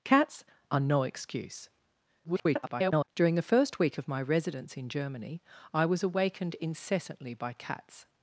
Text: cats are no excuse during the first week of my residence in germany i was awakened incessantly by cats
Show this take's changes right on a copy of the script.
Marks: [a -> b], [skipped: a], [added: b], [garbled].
cats are no excuse [garbled] during the first week of my residence in germany i was awakened incessantly by cats